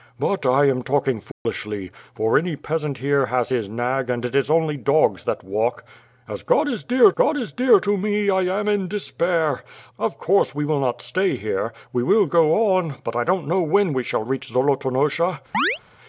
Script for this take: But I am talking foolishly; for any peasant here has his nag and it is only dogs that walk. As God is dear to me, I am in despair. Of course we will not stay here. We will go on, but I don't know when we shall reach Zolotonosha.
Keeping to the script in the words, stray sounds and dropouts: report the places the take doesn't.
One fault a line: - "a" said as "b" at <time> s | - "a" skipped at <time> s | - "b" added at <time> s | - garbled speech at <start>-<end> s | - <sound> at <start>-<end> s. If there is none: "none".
- dropout at 1.3-1.5 s
- "God is dear" added at 7.1 s
- chirp at 15.5-15.8 s